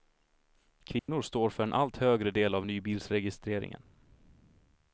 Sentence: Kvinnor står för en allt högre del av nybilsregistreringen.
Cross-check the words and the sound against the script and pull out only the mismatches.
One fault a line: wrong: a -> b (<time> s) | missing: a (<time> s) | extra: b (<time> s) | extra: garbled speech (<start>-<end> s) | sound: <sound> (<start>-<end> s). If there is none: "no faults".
sound: dropout (1.0-1.1 s)